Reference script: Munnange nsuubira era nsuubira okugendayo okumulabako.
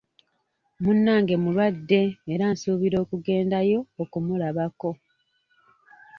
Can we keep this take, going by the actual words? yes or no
no